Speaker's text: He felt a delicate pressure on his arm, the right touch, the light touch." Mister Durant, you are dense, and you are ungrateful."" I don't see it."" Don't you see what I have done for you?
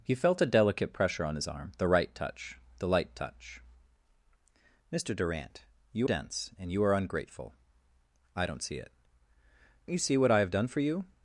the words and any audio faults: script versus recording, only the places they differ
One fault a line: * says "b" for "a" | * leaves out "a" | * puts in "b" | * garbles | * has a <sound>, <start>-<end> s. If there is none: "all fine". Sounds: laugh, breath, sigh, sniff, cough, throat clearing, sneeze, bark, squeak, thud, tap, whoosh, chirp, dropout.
* leaves out "are"
* leaves out "Don't"